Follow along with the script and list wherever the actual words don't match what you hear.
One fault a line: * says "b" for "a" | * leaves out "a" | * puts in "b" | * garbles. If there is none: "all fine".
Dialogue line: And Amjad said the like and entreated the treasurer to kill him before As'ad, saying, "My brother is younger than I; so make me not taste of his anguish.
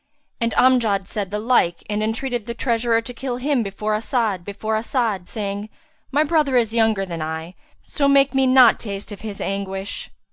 * puts in "before As'ad"